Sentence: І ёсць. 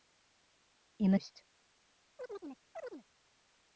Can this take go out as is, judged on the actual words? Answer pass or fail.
pass